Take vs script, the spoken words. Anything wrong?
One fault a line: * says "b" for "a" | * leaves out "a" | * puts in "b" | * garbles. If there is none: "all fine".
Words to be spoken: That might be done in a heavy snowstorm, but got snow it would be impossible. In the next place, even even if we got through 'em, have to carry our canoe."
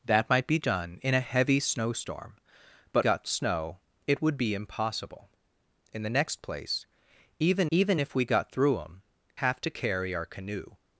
all fine